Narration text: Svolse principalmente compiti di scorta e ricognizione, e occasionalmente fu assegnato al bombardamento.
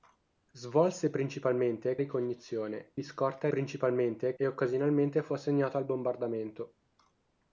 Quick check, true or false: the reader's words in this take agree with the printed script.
false